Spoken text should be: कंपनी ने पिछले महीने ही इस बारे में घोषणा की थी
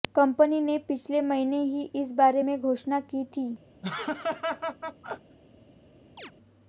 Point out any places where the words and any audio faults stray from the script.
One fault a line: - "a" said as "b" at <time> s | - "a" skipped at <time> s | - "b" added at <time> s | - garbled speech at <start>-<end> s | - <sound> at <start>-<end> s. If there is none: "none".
- laugh at 3.8-5.4 s
- chirp at 6.2-6.3 s